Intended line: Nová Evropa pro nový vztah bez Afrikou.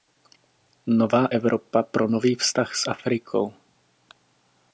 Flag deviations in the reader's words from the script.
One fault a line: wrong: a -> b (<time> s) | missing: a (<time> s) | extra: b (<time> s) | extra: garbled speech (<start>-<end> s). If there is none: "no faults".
wrong: bez -> s (2.8 s)